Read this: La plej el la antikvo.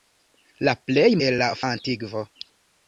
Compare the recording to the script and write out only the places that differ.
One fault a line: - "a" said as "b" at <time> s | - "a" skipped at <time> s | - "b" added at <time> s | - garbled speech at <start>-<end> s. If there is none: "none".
none